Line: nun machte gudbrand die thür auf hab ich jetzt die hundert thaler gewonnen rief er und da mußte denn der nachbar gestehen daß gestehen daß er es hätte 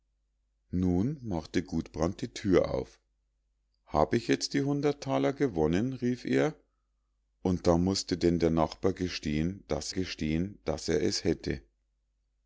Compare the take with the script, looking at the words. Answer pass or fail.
pass